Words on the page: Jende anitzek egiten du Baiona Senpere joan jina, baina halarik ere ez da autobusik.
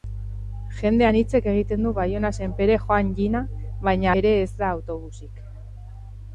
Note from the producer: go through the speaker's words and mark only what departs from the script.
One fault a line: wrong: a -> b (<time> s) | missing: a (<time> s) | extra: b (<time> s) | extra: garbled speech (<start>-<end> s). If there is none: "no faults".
missing: halarik (4.2 s)